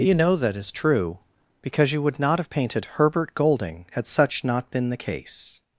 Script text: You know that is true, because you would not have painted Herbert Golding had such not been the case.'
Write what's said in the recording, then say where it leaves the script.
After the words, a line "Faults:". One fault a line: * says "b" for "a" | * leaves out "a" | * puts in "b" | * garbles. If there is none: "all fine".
You know that is true, because you would not have painted Herbert Golding had such not been the case.'
Faults:
all fine